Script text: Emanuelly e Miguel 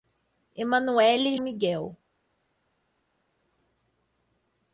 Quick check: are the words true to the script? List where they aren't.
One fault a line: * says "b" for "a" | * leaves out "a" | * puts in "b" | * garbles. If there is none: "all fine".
all fine